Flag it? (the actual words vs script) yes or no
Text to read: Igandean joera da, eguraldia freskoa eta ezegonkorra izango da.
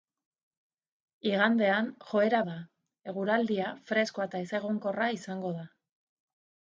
no